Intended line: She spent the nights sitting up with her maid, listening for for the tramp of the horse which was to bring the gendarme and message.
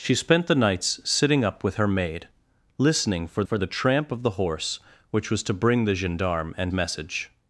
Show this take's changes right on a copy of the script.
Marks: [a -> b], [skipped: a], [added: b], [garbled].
She spent the nights sitting up with her maid, listening for for the tramp of the horse which was to bring the gendarme and message.